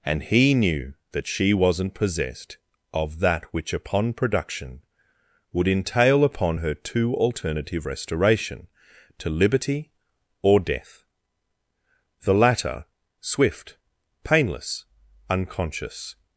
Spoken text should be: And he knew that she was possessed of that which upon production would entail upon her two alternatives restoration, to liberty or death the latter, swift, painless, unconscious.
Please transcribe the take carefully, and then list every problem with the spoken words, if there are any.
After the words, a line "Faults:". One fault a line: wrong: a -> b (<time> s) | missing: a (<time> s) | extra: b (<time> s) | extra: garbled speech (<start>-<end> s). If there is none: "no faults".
And he knew that she wasn't possessed of that which upon production would entail upon her two alternative restoration, to liberty or death the latter, swift, painless, unconscious.
Faults:
wrong: was -> wasn't (1.5 s)
wrong: alternatives -> alternative (7.2 s)